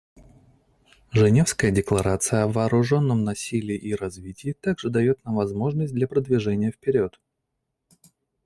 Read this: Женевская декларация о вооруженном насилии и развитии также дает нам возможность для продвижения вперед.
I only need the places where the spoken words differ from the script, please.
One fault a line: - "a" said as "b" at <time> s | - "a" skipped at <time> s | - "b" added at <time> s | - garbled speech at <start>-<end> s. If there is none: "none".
none